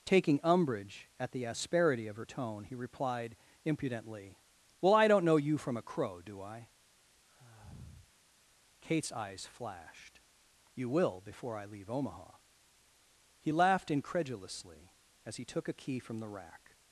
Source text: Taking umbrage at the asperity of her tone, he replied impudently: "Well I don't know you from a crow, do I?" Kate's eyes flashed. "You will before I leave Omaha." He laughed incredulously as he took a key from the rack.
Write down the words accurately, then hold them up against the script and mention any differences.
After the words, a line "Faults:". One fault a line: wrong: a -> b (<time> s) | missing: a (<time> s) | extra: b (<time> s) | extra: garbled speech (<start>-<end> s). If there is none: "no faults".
Taking umbrage at the asperity of her tone, he replied impudently: "Well I don't know you from a crow, do I?" Kate's eyes flashed. "You will before I leave Omaha." He laughed incredulously as he took a key from the rack.
Faults:
no faults